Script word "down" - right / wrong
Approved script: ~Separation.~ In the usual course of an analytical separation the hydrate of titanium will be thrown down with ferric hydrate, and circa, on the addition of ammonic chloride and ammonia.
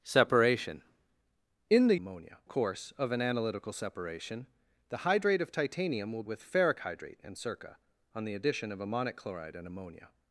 wrong